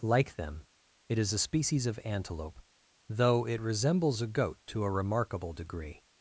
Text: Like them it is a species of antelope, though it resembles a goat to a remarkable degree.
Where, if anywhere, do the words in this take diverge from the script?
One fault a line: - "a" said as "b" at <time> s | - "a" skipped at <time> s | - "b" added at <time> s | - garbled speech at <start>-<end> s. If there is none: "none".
none